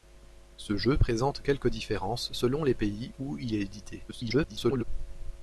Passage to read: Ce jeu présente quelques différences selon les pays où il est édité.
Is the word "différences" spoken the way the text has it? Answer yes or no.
yes